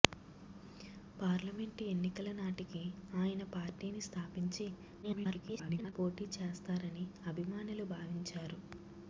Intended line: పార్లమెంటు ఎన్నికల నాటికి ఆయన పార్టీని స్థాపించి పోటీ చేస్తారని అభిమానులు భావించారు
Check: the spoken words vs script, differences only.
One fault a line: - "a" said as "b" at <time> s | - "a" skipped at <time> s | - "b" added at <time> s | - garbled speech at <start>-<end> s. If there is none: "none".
- garbled speech at 5.0-5.9 s